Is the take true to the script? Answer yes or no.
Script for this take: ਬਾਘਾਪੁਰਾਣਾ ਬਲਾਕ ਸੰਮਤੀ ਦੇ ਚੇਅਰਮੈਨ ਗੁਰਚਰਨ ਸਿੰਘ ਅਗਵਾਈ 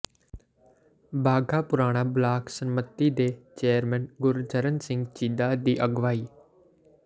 no